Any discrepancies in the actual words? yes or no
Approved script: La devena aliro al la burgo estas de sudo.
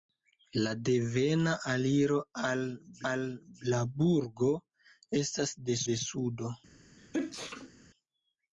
yes